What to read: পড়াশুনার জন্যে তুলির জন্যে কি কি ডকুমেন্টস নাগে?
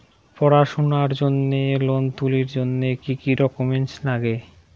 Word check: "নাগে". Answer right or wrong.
right